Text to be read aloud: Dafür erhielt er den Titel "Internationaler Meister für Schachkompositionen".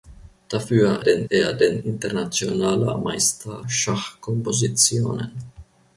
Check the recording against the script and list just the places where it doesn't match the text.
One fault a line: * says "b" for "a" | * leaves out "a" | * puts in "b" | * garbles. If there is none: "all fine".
* says "den" for "erhielt"
* leaves out "Titel"
* leaves out "für"